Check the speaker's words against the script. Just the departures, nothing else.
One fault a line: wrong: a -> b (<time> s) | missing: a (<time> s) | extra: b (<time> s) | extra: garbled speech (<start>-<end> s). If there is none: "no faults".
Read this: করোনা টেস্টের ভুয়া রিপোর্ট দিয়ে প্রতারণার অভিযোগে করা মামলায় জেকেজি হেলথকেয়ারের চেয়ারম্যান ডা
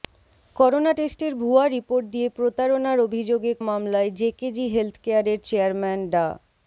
missing: করা (3.5 s)